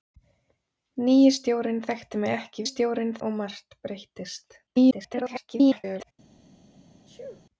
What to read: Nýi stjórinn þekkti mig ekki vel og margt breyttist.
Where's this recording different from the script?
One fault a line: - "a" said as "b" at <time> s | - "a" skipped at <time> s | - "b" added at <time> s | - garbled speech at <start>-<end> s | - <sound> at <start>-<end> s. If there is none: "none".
- "vel" said as "stjórinn" at 2.7 s
- garbled speech at 4.7-6.1 s
- sneeze at 7.1-7.4 s